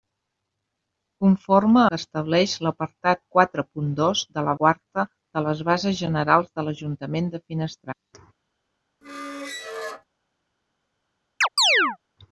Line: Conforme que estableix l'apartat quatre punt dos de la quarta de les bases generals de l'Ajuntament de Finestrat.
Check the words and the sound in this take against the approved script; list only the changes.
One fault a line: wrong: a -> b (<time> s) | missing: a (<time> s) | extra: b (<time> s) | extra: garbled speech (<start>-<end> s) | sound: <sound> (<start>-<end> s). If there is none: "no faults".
sound: squeak (9.0-10.0 s)
sound: chirp (11.4-12.0 s)